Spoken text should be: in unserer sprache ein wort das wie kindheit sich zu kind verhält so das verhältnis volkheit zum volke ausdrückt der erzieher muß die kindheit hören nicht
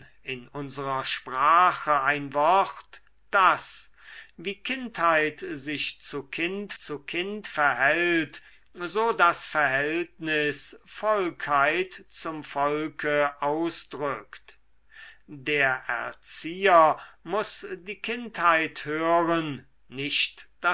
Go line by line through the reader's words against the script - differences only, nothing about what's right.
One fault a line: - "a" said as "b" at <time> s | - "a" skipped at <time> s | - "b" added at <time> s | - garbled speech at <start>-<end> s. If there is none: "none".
- "zu kind" added at 6.8 s